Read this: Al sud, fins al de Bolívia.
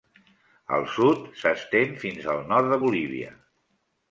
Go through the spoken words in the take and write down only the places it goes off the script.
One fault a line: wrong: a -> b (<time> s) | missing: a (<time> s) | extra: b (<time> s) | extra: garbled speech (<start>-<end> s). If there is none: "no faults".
extra: s'estén (1.4 s)
extra: nord (2.5 s)